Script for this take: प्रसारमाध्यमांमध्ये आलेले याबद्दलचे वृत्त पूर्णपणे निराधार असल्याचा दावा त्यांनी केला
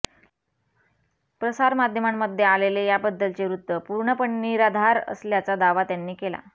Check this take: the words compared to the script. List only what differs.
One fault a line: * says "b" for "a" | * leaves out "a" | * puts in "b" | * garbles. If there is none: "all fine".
all fine